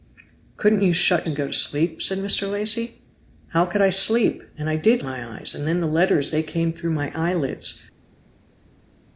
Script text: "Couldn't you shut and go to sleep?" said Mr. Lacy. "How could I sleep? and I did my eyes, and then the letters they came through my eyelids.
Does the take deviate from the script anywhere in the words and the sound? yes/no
no